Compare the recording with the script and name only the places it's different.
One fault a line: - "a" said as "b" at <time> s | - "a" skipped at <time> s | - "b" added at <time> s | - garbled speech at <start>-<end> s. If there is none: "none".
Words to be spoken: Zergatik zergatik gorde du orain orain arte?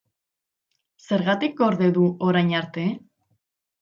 - "zergatik" skipped at 1.6 s
- "orain" skipped at 2.5 s